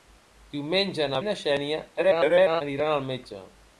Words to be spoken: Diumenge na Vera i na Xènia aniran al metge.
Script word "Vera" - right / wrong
wrong